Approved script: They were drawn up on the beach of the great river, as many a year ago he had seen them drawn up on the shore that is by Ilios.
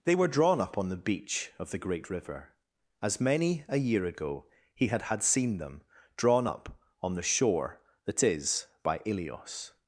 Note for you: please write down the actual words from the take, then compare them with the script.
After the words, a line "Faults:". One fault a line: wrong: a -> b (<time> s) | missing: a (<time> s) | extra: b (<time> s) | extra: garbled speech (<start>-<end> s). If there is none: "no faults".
They were drawn up on the beach of the great river, as many a year ago he had had seen them drawn up on the shore that is by Ilios.
Faults:
extra: had (5.1 s)